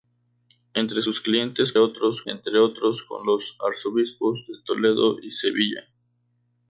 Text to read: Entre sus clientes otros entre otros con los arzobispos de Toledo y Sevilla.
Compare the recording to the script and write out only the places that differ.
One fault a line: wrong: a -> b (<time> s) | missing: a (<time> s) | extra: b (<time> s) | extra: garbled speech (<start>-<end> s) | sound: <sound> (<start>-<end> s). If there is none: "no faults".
no faults